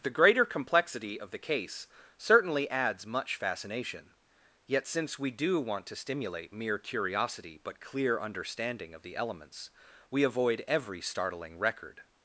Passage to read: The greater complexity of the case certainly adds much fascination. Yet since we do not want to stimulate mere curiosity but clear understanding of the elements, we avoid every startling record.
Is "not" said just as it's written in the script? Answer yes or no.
no